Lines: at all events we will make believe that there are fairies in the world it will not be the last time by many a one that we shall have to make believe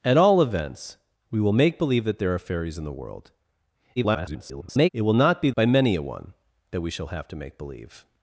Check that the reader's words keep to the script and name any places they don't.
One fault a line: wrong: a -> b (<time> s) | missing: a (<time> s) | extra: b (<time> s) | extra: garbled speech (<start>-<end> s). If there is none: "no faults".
extra: garbled speech (4.0-4.9 s)
missing: the last time (5.5 s)